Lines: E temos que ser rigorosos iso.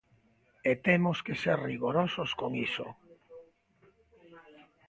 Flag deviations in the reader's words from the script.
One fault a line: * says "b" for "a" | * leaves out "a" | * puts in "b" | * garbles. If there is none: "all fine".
* puts in "con"